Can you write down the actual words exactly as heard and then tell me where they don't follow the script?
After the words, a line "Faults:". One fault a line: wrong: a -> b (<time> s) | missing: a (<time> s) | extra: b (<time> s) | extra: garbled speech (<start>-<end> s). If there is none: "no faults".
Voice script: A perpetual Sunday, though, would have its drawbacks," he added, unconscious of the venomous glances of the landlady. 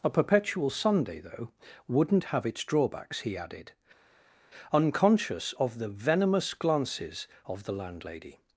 A perpetual Sunday, though, wouldn't have its drawbacks," he added, unconscious of the venomous glances of the landlady.
Faults:
wrong: would -> wouldn't (1.9 s)